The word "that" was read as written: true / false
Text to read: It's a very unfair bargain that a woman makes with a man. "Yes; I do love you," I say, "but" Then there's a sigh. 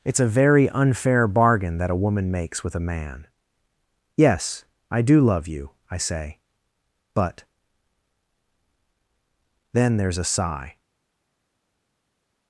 true